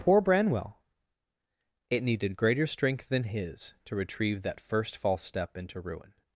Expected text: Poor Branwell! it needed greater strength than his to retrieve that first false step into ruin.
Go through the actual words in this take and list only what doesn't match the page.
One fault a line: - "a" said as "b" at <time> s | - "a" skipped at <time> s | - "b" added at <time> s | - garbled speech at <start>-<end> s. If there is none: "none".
none